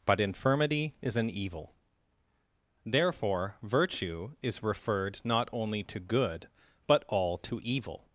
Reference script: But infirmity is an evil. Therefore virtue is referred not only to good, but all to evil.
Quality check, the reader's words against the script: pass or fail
pass